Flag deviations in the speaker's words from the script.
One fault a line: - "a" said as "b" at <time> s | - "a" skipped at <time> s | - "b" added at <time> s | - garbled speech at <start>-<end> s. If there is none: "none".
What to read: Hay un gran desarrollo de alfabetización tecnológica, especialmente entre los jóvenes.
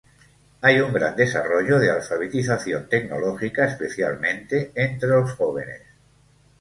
none